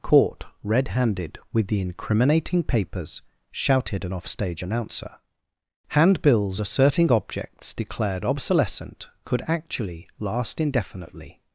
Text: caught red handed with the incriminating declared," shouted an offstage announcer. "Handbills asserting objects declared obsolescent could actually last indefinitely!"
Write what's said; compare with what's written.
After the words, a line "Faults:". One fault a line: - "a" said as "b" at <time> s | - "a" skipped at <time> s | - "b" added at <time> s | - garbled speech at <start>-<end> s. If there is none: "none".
caught red handed with the incriminating papers," shouted an offstage announcer. "Handbills asserting objects declared obsolescent could actually last indefinitely!"
Faults:
- "declared" said as "papers" at 2.6 s